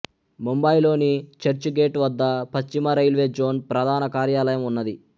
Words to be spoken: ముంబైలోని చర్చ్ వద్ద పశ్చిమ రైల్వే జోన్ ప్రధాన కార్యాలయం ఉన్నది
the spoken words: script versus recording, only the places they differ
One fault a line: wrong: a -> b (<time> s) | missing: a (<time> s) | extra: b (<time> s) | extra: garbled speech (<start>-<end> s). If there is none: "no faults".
extra: గేట్ (1.8 s)